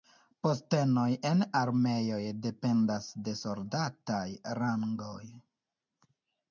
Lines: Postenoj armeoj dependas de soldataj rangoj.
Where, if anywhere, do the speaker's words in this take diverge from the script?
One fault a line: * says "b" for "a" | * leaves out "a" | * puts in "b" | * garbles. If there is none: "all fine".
* puts in "en"